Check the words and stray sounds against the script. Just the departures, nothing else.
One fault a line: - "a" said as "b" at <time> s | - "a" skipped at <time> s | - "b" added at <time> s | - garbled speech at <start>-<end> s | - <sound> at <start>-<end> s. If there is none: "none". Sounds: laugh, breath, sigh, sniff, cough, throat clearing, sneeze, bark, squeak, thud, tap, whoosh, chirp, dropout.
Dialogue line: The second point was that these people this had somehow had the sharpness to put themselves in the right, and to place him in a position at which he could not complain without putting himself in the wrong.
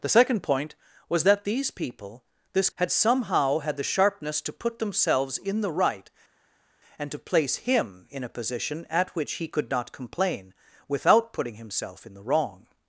none